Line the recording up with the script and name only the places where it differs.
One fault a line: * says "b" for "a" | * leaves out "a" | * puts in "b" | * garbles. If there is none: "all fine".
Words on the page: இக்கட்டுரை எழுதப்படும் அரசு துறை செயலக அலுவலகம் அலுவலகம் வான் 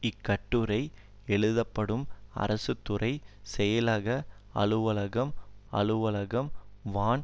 all fine